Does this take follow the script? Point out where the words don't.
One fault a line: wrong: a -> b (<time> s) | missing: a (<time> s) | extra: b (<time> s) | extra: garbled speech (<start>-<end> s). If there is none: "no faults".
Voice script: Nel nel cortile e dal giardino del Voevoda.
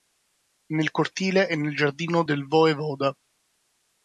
missing: nel (0.9 s)
wrong: dal -> nel (1.6 s)